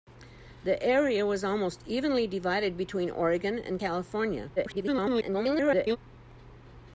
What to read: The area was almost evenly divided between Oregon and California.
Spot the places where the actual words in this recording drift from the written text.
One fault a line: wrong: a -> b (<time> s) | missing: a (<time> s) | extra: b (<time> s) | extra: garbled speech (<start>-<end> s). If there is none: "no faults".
extra: garbled speech (4.6-6.0 s)